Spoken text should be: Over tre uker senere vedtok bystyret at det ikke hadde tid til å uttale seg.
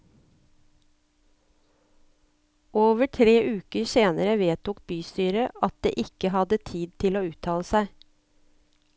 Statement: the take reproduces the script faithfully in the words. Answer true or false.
true